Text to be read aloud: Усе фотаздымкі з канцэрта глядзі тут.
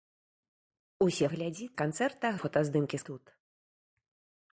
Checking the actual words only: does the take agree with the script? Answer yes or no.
no